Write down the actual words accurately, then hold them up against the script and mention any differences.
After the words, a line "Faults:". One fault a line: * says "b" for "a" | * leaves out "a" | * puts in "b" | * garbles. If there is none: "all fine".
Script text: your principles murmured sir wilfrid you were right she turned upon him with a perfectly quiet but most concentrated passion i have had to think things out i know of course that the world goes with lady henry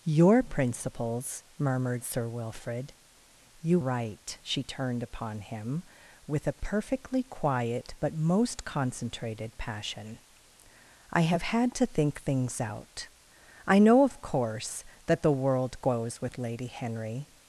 your principles murmured sir wilfrid you right she turned upon him with a perfectly quiet but most concentrated passion i have had to think things out i know of course that the world goes with lady henry
Faults:
* leaves out "were"